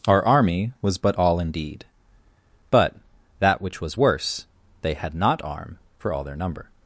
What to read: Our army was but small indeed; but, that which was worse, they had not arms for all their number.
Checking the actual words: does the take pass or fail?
fail